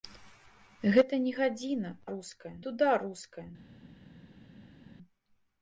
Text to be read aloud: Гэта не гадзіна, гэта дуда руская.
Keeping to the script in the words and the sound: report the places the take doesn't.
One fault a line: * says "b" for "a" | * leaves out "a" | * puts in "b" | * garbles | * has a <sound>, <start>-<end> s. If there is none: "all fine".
* says "руская" for "гэта"